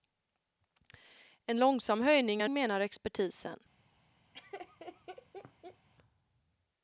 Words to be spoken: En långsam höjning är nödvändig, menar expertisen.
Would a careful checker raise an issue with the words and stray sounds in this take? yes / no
yes